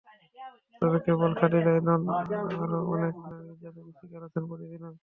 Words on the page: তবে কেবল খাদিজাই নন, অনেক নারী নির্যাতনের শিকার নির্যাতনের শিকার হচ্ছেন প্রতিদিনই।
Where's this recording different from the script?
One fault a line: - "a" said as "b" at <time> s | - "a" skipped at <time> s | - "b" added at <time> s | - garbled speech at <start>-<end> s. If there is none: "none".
- "আরও" added at 2.5 s
- "নির্যাতনের শিকার" skipped at 4.2 s